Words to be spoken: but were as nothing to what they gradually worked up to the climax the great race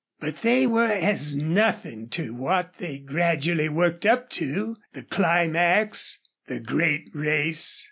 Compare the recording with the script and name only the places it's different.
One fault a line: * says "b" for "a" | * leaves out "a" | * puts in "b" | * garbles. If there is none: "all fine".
* puts in "they"